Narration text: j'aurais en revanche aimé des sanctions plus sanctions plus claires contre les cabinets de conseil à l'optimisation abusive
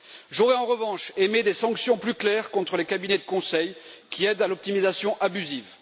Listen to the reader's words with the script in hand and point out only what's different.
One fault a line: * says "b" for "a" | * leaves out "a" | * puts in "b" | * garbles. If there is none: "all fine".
* leaves out "sanctions plus"
* puts in "qui aident"